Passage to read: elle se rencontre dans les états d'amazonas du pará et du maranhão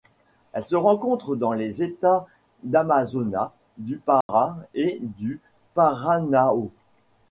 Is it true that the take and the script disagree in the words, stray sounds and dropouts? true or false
true